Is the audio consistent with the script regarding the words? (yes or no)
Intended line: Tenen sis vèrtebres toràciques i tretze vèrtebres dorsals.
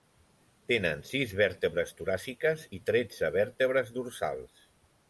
yes